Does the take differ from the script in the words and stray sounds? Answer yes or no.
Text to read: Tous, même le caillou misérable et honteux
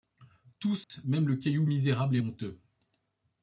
yes